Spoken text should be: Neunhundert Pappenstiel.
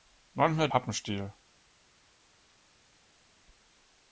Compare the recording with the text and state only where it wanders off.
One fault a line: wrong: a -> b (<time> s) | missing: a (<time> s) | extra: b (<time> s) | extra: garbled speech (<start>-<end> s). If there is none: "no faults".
no faults